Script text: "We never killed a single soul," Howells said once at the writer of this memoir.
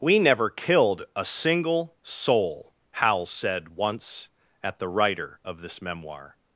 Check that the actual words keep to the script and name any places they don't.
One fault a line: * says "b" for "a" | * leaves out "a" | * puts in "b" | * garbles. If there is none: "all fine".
all fine